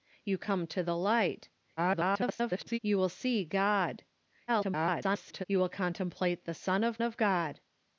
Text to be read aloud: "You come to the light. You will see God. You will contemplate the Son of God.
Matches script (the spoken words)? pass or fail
fail